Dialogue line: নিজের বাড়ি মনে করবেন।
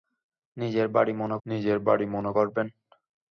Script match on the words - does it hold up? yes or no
no